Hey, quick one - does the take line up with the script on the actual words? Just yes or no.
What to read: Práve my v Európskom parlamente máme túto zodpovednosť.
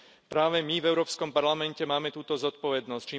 yes